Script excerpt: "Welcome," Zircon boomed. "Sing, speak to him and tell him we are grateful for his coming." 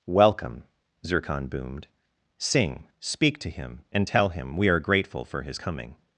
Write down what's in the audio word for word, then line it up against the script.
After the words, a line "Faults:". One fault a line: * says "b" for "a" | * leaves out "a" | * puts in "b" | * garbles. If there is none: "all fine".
"Welcome," Zircon boomed. "Sing, speak to him and tell him we are grateful for his coming."
Faults:
all fine